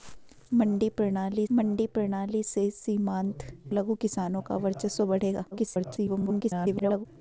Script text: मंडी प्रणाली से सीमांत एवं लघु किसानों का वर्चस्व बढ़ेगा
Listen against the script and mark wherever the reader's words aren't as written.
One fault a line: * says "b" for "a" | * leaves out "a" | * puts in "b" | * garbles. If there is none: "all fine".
* puts in "मंडी प्रणाली"
* leaves out "एवं"
* garbles